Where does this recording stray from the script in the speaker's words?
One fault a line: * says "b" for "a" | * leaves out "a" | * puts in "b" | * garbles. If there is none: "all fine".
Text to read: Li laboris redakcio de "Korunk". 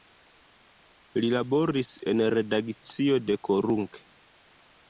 * puts in "en"